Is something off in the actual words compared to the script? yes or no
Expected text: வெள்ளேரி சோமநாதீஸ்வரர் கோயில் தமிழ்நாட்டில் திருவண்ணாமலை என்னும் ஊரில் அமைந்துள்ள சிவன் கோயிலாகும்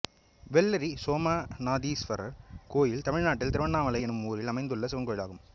no